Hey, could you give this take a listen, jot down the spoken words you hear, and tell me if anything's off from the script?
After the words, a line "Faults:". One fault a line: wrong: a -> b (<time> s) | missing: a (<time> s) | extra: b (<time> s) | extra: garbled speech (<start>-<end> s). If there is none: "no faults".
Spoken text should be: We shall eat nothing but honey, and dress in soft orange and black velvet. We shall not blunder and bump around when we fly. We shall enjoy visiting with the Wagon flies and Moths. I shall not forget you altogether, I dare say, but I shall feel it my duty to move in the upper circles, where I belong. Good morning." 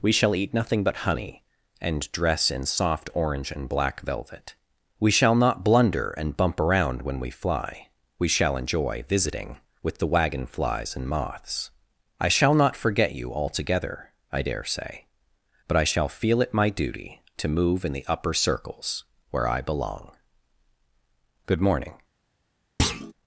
We shall eat nothing but honey, and dress in soft orange and black velvet. We shall not blunder and bump around when we fly. We shall enjoy visiting with the Wagon flies and Moths. I shall not forget you altogether, I dare say, but I shall feel it my duty to move in the upper circles, where I belong. Good morning."
Faults:
no faults